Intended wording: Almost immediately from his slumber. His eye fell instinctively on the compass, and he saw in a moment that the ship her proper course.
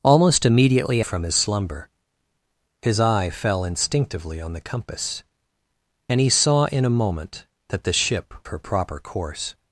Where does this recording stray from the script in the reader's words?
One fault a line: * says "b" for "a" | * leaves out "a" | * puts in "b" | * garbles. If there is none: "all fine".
all fine